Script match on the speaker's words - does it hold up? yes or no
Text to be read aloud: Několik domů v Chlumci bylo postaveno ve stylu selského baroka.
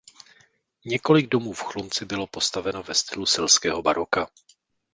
yes